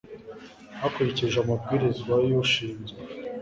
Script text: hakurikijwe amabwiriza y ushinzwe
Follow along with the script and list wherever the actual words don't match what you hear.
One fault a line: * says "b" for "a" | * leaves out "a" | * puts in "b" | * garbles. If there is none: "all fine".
all fine